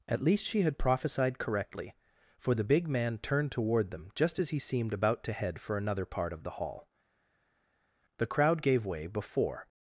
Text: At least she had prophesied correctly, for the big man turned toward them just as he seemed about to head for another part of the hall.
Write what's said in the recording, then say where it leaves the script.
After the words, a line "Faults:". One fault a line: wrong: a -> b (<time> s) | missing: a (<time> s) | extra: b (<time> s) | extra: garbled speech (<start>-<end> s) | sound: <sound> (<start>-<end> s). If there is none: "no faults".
At least she had prophesied correctly, for the big man turned toward them just as he seemed about to head for another part of the hall. The crowd gave way before
Faults:
extra: The crowd gave way before (8.2 s)